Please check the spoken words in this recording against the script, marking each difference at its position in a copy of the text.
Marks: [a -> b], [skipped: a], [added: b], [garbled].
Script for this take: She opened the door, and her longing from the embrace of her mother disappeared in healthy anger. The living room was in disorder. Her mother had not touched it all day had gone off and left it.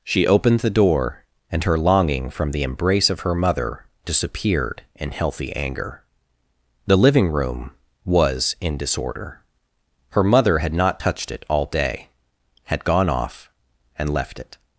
She opened the door, and her longing from the embrace of her mother disappeared in healthy anger. The living room was in disorder. Her mother had not touched it all day had gone off and left it.